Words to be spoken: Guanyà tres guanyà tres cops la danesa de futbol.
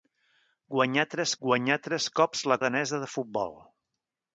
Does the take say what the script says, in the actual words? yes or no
yes